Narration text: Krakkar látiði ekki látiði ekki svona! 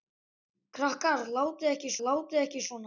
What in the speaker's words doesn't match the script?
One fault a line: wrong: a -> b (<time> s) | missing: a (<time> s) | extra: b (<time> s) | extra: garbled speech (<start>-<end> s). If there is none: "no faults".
no faults